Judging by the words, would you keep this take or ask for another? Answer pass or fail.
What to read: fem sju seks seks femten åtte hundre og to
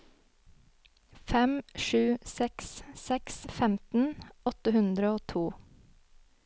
pass